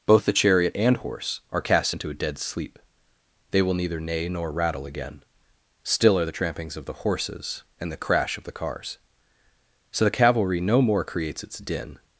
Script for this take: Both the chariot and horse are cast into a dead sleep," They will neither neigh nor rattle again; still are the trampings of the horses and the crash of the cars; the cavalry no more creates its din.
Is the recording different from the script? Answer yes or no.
yes